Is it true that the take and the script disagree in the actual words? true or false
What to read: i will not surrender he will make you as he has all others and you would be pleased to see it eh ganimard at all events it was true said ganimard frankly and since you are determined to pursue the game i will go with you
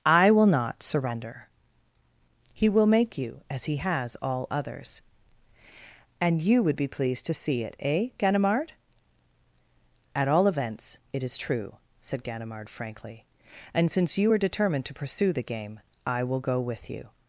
true